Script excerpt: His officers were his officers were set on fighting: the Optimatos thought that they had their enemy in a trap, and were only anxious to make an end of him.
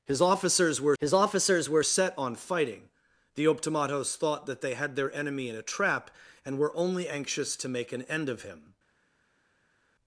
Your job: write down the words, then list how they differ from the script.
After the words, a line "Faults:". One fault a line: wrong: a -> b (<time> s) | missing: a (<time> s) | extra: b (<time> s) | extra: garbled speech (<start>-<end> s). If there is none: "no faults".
His officers were his officers were set on fighting: the Optimatos thought that they had their enemy in a trap, and were only anxious to make an end of him.
Faults:
no faults